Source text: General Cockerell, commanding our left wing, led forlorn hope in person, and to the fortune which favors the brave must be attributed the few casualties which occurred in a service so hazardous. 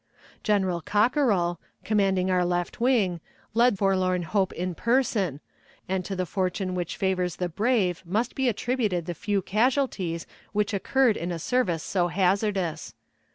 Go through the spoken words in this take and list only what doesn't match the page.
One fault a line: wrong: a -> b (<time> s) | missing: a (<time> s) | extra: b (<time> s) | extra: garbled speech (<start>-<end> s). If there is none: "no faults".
no faults